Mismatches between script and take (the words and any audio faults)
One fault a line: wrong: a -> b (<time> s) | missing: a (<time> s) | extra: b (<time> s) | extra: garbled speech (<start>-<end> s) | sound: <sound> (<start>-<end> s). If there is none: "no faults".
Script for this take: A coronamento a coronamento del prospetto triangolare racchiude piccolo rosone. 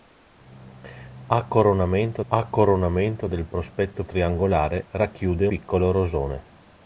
no faults